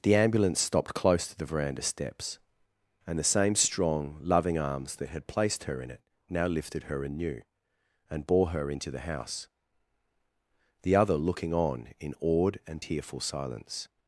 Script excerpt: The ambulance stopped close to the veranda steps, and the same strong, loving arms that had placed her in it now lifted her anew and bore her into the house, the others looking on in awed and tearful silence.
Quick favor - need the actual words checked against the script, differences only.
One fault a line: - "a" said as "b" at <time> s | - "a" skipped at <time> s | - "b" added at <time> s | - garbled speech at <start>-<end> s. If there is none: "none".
- "others" said as "other" at 10.9 s